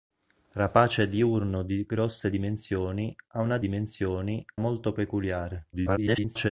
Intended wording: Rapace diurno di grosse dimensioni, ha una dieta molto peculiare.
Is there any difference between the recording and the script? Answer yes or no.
yes